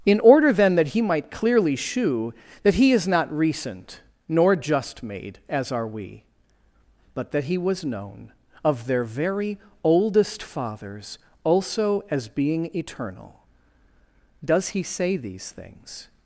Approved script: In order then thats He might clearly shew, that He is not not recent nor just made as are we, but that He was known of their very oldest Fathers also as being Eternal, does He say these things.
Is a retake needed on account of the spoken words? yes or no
yes